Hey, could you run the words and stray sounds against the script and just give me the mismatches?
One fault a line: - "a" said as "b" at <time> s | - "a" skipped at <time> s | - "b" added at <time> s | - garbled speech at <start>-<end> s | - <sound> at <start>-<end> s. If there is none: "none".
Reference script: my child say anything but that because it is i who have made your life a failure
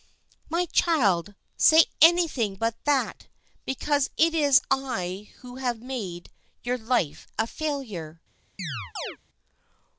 - chirp at 8.6-9.2 s